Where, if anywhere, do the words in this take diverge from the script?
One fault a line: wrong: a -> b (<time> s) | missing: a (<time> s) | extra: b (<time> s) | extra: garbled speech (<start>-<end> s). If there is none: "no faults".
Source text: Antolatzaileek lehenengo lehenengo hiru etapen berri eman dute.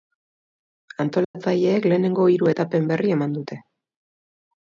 missing: lehenengo (2.2 s)